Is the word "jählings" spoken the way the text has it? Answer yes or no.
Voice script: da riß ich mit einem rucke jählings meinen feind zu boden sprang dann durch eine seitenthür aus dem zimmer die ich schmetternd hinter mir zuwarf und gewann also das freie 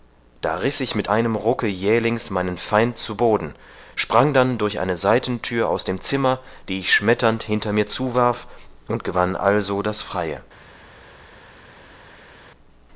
yes